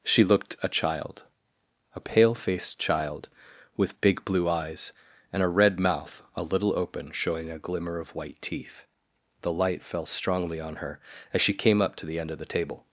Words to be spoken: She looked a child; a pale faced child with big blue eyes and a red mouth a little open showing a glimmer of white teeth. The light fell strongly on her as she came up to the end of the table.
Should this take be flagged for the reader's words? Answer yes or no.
no